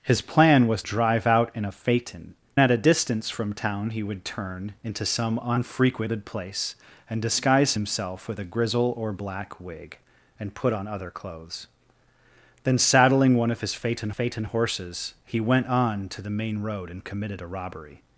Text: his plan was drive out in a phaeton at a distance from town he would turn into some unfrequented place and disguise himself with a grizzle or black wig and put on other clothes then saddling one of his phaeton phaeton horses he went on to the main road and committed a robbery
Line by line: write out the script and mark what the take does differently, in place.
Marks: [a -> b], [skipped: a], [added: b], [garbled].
his plan was drive out in a phaeton at a distance from town he would turn into some unfrequented place and disguise himself with a grizzle or black wig and put on other clothes then saddling one of his phaeton phaeton horses he went on to the main road and committed a robbery